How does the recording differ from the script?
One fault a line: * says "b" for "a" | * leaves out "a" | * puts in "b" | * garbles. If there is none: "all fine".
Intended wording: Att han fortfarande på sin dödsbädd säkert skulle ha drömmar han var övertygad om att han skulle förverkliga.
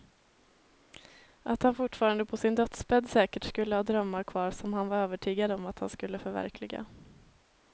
* puts in "kvar som"